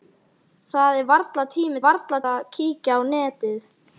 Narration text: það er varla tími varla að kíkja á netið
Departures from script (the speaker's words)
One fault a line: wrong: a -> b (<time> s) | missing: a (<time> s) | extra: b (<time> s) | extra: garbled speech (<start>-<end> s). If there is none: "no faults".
no faults